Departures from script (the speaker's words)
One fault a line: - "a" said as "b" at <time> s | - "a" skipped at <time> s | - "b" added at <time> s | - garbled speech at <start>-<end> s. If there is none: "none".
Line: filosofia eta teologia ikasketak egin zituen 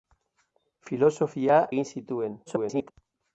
- "eta teologia ikasketak" skipped at 1.6 s
- garbled speech at 2.5-2.9 s